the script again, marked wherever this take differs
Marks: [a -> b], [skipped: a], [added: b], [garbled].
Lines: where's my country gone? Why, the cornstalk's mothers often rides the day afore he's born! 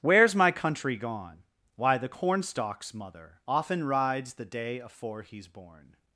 where's my country gone? Why, the cornstalk's [mothers -> mother] often rides the day afore he's born!